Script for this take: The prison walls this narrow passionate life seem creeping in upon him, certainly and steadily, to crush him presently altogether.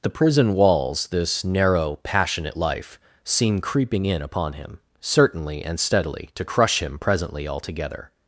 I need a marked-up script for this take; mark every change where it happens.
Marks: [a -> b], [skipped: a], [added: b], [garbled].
The prison walls this narrow passionate life seem creeping in upon him, certainly and steadily, to crush him presently altogether.